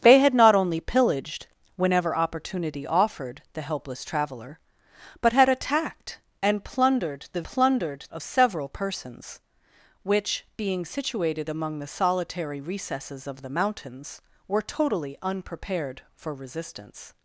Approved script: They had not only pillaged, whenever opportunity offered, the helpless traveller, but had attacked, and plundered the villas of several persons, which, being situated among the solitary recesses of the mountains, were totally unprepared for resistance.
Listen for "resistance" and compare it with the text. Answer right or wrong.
right